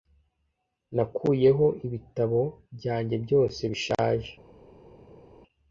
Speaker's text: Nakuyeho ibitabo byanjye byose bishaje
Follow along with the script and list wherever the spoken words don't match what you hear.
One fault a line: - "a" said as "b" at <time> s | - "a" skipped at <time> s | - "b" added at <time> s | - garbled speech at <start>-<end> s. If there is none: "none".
none